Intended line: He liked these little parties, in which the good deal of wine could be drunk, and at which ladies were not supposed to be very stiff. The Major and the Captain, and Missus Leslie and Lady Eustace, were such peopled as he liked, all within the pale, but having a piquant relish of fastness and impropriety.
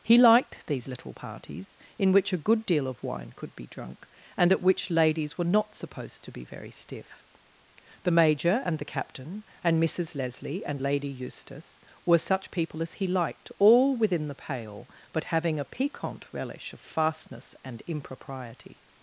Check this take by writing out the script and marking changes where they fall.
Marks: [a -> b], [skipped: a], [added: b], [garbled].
He liked these little parties, in which [the -> a] good deal of wine could be drunk, and at which ladies were not supposed to be very stiff. The Major and the Captain, and Missus Leslie and Lady Eustace, were such [peopled -> people] as he liked, all within the pale, but having a piquant relish of fastness and impropriety.